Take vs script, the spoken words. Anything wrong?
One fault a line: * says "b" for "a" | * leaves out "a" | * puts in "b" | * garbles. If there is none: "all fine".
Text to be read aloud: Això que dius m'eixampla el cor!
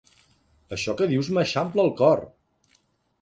all fine